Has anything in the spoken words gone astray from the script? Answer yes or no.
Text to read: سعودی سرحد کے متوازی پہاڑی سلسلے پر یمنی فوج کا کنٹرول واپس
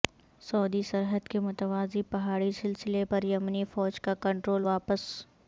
no